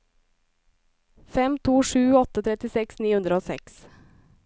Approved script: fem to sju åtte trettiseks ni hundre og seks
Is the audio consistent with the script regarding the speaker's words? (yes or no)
yes